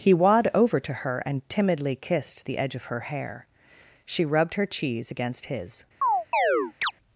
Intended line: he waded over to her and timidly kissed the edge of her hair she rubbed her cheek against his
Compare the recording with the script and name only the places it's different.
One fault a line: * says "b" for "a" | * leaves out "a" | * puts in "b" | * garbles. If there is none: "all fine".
* says "wad" for "waded"
* says "cheese" for "cheek"